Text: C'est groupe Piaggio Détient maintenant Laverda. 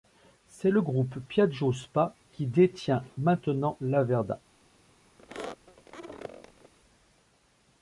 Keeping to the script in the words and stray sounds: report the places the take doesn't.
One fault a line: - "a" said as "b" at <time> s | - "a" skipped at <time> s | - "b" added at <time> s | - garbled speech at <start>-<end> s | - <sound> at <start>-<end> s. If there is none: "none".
- "le" added at 0.7 s
- "SpA qui" added at 1.7 s
- squeak at 5.2-6.7 s